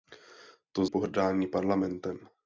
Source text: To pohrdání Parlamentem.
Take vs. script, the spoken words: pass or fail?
pass